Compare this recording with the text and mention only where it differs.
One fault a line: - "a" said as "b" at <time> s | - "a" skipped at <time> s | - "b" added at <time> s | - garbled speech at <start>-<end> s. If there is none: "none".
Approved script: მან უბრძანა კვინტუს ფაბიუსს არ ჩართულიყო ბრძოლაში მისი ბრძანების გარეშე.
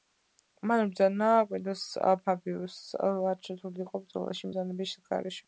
- "მისი" skipped at 4.5 s